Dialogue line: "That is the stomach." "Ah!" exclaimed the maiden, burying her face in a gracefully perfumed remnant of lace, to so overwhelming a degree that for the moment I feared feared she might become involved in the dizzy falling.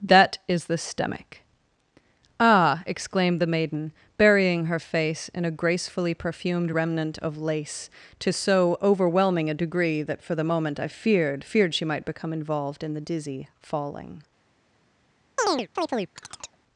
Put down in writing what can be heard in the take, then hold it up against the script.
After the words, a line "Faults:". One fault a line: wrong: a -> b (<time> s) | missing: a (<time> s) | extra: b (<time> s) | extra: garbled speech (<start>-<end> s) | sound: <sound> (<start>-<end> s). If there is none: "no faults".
"That is the stomach." "Ah!" exclaimed the maiden, burying her face in a gracefully perfumed remnant of lace, to so overwhelming a degree that for the moment I feared feared she might become involved in the dizzy falling.
Faults:
sound: chirp (15.4-16.6 s)